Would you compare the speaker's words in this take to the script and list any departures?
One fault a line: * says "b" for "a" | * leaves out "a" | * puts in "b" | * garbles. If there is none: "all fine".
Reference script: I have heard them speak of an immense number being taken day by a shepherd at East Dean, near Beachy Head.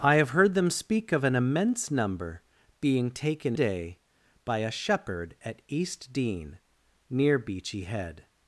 all fine